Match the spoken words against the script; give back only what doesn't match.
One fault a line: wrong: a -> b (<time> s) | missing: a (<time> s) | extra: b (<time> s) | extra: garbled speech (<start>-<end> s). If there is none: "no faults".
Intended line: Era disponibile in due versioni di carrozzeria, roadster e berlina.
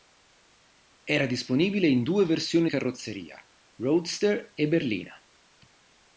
missing: di (2.7 s)